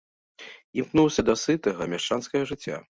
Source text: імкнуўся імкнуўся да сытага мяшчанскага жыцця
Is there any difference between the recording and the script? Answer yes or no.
yes